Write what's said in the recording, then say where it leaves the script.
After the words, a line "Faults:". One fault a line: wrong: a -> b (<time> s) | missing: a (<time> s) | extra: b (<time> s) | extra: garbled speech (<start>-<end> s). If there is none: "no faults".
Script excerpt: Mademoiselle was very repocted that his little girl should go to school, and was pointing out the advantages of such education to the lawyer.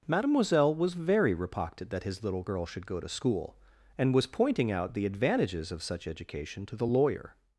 Mademoiselle was very repocted that his little girl should go to school, and was pointing out the advantages of such education to the lawyer.
Faults:
no faults